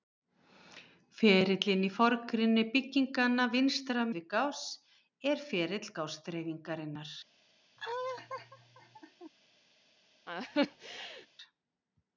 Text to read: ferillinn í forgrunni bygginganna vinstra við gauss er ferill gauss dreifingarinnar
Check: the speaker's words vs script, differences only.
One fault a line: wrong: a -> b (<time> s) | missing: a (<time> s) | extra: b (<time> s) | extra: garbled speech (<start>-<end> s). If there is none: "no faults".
no faults